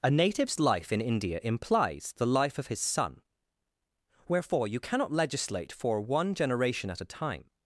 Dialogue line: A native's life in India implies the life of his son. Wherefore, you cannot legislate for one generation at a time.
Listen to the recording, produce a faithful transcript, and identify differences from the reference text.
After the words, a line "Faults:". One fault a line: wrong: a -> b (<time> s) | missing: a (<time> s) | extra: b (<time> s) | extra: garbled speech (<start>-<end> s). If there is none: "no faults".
A native's life in India implies the life of his son. Wherefore, you cannot legislate for one generation at a time.
Faults:
no faults